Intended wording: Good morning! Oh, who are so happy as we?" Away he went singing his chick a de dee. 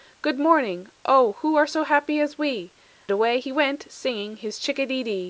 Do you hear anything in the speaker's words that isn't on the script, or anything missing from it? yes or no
no